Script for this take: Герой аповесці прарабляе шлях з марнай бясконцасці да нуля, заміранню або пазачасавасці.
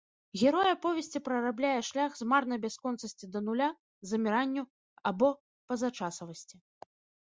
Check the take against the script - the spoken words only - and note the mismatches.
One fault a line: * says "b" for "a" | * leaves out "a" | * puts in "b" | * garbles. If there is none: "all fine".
all fine